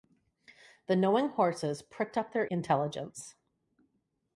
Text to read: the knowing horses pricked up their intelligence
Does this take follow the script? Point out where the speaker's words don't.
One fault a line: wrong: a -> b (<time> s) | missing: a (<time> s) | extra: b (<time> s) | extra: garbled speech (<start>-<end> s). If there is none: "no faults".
no faults